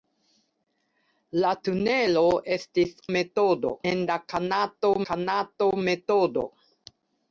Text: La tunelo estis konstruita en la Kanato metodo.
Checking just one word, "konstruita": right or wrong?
wrong